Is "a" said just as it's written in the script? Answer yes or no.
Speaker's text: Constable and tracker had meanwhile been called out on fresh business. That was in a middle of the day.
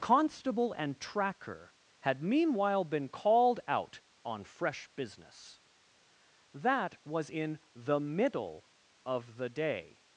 no